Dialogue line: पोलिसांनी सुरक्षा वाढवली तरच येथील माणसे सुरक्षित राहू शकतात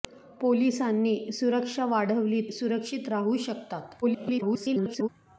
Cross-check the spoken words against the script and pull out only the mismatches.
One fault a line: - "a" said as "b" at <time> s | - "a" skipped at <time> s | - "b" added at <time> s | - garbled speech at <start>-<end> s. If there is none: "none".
- "तरच येथील माणसे" skipped at 2.4 s
- garbled speech at 4.0-5.1 s